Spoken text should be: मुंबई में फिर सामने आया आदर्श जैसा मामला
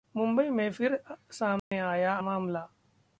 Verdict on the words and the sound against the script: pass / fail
fail